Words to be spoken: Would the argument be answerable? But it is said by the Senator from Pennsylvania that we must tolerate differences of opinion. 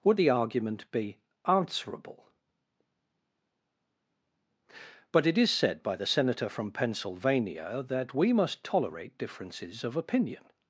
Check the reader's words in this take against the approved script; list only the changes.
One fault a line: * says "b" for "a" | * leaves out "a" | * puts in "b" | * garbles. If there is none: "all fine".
all fine